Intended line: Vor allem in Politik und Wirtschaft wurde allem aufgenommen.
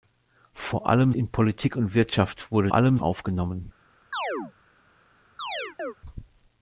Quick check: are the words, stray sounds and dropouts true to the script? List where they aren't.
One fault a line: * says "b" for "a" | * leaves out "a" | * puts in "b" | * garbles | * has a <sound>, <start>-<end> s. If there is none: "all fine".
* has a chirp, 4.1-4.5 s
* has a chirp, 5.4-5.9 s